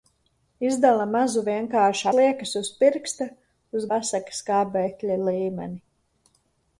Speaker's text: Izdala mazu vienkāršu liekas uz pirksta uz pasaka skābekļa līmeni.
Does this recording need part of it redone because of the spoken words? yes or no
no